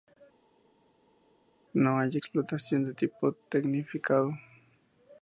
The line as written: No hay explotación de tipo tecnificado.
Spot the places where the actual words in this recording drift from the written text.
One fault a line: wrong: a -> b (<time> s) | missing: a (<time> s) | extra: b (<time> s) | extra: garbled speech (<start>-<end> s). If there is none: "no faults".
no faults